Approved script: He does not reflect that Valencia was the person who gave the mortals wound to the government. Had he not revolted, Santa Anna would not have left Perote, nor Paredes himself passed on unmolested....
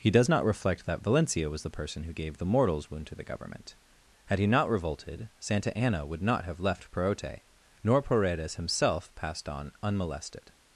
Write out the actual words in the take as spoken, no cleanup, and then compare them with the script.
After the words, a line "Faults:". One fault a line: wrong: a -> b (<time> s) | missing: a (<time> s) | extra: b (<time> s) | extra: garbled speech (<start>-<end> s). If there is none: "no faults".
He does not reflect that Valencia was the person who gave the mortals wound to the government. Had he not revolted, Santa Anna would not have left Perote, nor Paredes himself passed on unmolested....
Faults:
no faults